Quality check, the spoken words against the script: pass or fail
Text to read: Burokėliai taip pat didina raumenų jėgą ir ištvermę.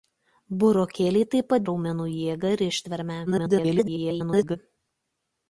fail